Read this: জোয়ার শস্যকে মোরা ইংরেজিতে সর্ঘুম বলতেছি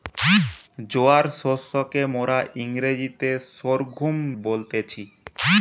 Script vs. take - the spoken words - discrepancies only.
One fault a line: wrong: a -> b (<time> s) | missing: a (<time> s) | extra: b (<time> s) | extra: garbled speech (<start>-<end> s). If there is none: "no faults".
no faults